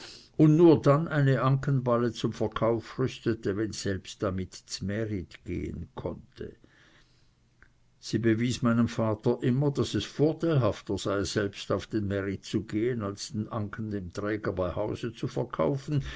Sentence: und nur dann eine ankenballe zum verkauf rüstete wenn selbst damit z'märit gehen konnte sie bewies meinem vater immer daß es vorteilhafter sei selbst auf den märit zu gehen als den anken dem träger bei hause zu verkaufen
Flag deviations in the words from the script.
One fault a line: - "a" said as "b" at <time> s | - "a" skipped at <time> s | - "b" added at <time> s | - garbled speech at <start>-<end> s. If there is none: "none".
none